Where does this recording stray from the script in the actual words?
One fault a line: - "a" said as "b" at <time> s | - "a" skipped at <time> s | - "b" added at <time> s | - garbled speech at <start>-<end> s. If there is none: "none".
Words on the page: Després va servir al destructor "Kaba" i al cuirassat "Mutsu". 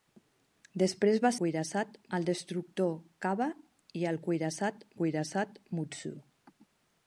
- "servir" said as "cuirassat" at 1.4 s
- "cuirassat" added at 5.0 s